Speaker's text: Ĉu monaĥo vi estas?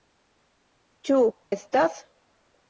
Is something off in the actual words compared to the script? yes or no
yes